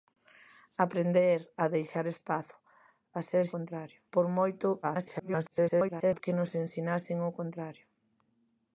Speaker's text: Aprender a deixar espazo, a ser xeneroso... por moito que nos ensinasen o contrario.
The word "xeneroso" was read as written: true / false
false